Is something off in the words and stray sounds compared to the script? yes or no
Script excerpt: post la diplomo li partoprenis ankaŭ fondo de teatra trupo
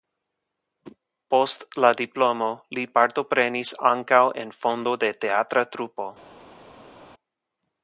yes